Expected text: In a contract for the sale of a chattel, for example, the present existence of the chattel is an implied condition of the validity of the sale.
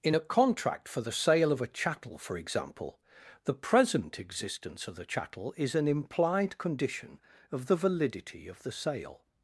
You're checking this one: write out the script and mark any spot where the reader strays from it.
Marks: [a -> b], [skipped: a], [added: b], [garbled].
In a contract for the sale of a chattel, for example, the present existence of the chattel is an implied condition of the validity of the sale.